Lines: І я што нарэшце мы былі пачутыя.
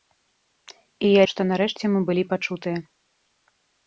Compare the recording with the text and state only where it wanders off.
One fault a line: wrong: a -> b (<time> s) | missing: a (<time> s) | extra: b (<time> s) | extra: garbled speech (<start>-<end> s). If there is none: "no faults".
no faults